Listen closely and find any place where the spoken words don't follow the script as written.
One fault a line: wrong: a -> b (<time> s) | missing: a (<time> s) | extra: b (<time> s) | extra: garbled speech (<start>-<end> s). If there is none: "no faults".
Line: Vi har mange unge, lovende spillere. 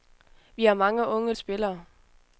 missing: lovende (1.3 s)